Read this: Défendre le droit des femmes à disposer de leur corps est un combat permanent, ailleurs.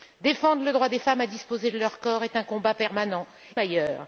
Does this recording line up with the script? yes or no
yes